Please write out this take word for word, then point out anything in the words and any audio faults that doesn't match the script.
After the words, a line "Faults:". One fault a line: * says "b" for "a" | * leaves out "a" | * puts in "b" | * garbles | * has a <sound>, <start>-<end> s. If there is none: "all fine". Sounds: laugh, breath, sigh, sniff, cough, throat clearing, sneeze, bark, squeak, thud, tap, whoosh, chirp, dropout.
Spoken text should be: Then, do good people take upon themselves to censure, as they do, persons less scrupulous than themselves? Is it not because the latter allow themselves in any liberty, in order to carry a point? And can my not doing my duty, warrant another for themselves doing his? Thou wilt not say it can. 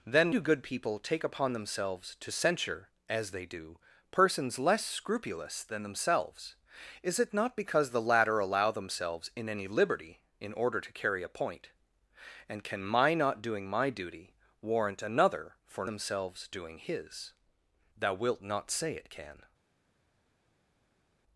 Then, do good people take upon themselves to censure, as they do, persons less scrupulous than themselves? Is it not because the latter allow themselves in any liberty, in order to carry a point? And can my not doing my duty, warrant another for themselves doing his? Thou wilt not say it can.
Faults:
all fine